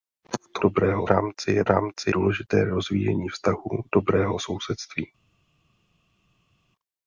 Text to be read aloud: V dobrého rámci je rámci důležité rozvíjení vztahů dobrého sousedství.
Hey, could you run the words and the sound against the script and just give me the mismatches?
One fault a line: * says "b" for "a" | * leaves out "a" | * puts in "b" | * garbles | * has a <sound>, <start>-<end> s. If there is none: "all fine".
all fine